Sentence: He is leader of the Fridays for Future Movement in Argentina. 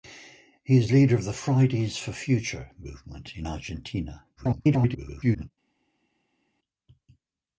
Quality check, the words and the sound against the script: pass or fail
fail